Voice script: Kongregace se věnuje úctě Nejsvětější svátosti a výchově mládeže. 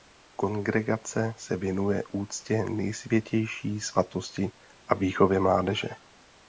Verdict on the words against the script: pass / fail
pass